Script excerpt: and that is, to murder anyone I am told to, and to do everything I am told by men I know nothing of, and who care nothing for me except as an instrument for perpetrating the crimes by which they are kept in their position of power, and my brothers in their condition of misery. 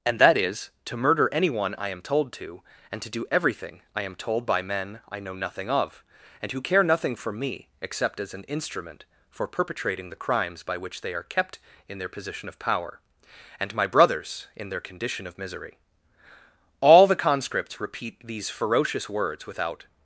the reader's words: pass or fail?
fail